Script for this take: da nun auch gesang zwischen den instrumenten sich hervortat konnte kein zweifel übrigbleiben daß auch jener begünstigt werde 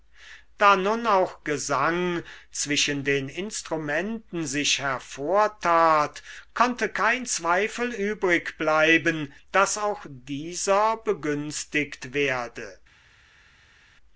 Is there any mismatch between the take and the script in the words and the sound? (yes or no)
yes